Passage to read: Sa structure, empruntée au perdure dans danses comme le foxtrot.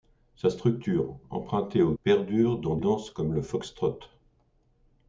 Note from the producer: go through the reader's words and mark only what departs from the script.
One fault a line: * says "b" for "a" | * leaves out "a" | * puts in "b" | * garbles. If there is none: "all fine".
all fine